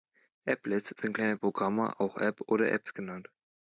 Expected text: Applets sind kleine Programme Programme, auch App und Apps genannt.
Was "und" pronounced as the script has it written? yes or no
no